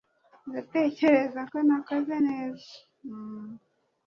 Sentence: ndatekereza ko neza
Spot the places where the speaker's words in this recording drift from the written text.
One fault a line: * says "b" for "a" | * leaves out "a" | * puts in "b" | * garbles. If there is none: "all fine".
* puts in "nakoze"